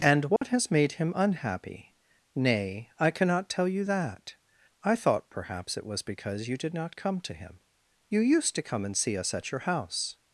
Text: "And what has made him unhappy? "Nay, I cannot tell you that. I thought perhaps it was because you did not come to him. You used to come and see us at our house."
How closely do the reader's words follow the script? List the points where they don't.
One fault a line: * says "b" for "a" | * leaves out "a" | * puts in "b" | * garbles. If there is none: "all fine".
* says "your" for "our"